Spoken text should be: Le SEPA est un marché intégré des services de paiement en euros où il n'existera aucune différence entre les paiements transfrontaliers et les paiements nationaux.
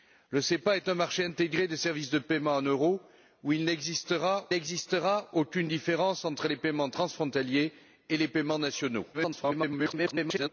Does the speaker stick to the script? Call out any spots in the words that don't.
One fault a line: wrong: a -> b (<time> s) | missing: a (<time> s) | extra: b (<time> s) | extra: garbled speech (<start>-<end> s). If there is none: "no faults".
extra: n'existera (4.5 s)
extra: garbled speech (9.1-10.5 s)